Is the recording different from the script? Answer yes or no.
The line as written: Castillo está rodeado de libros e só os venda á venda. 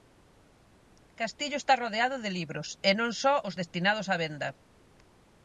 yes